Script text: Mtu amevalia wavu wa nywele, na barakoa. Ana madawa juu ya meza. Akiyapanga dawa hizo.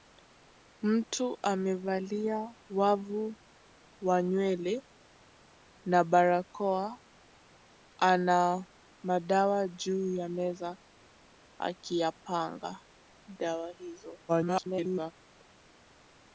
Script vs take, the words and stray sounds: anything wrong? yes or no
yes